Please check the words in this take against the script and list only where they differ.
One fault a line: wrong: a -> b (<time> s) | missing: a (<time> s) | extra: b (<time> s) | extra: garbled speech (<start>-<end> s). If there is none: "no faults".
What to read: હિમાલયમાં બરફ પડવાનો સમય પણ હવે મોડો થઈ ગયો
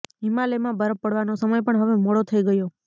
no faults